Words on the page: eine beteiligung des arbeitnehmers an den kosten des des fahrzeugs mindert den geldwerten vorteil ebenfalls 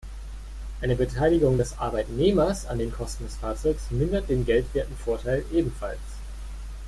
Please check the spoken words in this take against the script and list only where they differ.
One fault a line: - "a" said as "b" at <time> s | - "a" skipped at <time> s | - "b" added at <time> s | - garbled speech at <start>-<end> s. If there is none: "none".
- "des" skipped at 3.4 s